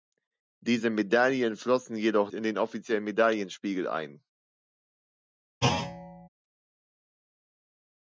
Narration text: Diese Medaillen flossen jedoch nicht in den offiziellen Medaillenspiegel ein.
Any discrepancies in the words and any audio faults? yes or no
yes